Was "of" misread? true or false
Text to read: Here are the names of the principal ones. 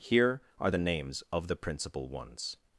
false